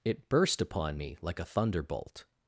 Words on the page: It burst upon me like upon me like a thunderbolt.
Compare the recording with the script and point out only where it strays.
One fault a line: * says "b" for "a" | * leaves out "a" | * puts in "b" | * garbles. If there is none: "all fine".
* leaves out "upon me like"